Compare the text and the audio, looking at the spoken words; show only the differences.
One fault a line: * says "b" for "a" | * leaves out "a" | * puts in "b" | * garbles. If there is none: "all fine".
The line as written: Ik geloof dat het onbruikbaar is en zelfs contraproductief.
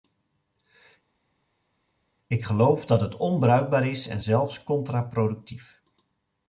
all fine